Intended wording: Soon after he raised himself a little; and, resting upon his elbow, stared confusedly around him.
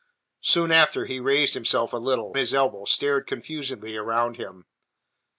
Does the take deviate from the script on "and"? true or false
true